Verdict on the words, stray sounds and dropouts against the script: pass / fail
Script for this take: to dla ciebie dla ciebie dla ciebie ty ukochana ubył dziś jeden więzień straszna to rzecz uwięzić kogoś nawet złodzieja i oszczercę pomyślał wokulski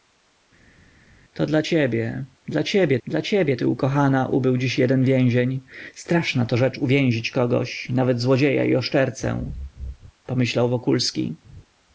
pass